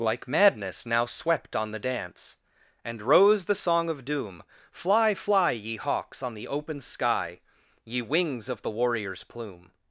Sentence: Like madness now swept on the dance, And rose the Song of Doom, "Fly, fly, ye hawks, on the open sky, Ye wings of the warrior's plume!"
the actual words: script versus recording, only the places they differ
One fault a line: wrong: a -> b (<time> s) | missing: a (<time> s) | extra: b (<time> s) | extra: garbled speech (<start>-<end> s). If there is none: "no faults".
no faults